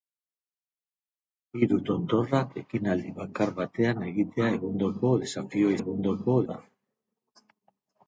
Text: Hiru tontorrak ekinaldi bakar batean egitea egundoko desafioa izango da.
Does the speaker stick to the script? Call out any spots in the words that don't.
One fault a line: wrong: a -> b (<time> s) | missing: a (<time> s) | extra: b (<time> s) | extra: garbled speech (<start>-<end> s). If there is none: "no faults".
wrong: izango -> egundoko (5.8 s)